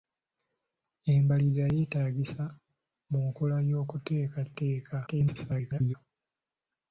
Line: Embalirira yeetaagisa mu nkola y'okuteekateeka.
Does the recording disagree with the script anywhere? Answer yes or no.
yes